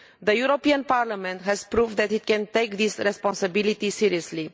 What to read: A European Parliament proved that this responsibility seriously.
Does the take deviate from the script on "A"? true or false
true